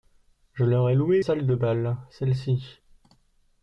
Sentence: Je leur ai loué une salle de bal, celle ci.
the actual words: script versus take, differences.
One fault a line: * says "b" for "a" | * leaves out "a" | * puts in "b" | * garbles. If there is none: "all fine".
* leaves out "une"